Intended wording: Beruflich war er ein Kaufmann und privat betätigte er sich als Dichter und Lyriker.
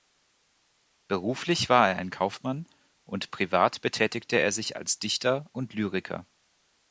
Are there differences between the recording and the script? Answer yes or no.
no